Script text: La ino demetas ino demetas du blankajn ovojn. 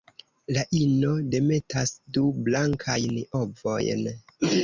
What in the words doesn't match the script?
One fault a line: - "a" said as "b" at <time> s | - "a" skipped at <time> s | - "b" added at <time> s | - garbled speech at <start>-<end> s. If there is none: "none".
- "ino demetas" skipped at 1.9 s